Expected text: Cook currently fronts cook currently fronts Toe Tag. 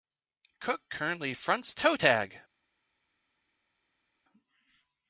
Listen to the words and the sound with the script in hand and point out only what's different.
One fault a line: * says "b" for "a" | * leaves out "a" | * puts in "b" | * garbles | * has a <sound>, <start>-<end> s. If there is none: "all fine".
* leaves out "cook currently fronts"